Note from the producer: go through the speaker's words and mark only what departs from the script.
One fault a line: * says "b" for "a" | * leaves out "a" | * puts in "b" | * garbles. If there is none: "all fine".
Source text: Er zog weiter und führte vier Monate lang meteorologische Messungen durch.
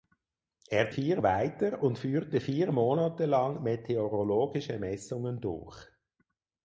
* says "vier" for "zog"